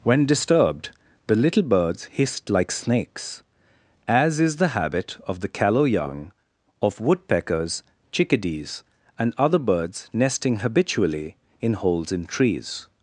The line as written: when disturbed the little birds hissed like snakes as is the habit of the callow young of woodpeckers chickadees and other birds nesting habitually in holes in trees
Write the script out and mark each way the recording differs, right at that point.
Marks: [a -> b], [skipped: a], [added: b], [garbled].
when disturbed the little birds hissed like snakes as is the habit of the callow young of woodpeckers chickadees and other birds nesting habitually in holes in trees